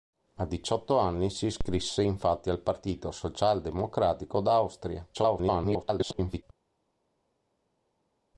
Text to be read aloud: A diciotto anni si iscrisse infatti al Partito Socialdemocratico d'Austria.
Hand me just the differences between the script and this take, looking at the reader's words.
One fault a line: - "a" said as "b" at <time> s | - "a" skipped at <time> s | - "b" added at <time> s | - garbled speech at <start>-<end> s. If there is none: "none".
- garbled speech at 5.1-6.4 s